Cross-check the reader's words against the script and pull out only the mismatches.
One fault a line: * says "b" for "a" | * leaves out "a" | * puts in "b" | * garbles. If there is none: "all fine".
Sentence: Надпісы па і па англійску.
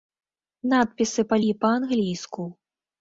all fine